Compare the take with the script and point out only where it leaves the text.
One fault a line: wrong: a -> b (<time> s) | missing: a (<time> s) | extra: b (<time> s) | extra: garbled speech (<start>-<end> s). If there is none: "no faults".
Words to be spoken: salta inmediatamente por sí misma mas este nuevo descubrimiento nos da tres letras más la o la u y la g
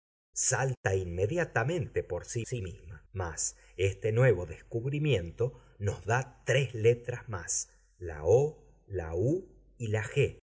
extra: sí (2.4 s)